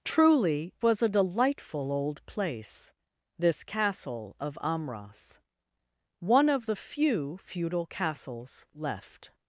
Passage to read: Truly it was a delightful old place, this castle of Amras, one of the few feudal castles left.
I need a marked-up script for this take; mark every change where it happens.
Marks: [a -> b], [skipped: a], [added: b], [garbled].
Truly [skipped: it] was a delightful old place, this castle of Amras, one of the few feudal castles left.